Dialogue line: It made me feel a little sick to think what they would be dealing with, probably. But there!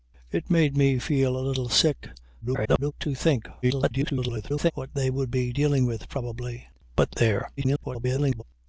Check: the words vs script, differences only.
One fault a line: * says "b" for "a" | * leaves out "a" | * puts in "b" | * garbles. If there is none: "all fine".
* garbles
* garbles
* garbles